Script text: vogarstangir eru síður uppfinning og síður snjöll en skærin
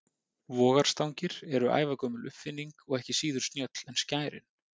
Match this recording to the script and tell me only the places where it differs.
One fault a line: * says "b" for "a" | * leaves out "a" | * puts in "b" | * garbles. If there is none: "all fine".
* says "ævagömul" for "síður"
* puts in "ekki"